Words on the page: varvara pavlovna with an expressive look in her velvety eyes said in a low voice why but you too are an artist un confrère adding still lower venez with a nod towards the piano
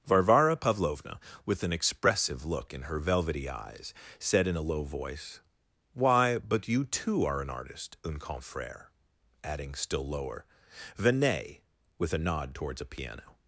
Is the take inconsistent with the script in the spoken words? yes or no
yes